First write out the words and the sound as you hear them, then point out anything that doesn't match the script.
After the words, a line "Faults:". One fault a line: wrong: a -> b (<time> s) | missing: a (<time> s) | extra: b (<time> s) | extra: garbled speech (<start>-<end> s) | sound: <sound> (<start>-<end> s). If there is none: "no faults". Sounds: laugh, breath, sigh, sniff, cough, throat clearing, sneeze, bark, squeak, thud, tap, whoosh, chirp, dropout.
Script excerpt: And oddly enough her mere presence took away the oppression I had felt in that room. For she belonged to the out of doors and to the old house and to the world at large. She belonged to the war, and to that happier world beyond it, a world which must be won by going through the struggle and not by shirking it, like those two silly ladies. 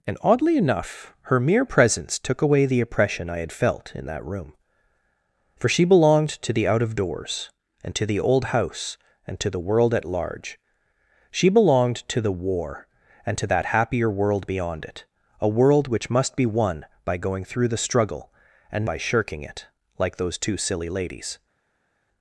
And oddly enough her mere presence took away the oppression I had felt in that room. For she belonged to the out of doors and to the old house and to the world at large. She belonged to the war, and to that happier world beyond it, a world which must be won by going through the struggle and by shirking it, like those two silly ladies.
Faults:
missing: not (18.9 s)